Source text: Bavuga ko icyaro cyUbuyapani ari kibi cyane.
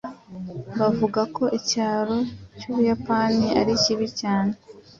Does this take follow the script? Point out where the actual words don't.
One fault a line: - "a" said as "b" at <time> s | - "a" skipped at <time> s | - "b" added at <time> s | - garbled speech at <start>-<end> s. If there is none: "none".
none